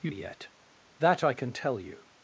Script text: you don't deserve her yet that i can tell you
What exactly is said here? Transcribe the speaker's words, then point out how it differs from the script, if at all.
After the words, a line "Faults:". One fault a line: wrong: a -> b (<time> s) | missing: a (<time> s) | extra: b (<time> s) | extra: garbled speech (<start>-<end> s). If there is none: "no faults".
you yet that i can tell you
Faults:
missing: don't deserve her (0.1 s)